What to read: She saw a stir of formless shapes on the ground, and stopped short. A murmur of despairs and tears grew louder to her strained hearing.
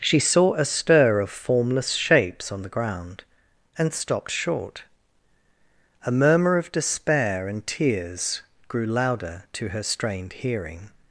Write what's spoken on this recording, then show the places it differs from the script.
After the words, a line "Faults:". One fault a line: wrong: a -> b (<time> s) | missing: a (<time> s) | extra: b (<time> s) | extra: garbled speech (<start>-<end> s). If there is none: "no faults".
She saw a stir of formless shapes on the ground, and stopped short. A murmur of despair and tears grew louder to her strained hearing.
Faults:
wrong: despairs -> despair (6.7 s)